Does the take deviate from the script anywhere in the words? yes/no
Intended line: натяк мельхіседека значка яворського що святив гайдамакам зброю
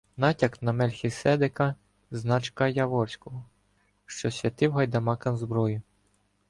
yes